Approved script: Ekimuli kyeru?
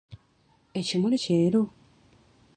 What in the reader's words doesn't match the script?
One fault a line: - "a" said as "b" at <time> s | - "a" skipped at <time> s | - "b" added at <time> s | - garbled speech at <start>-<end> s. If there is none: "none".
none